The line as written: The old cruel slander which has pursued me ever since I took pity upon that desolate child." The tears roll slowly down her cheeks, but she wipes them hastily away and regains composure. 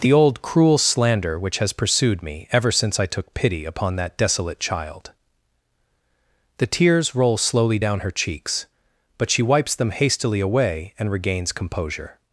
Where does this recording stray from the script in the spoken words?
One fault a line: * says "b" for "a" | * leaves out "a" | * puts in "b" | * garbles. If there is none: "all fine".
all fine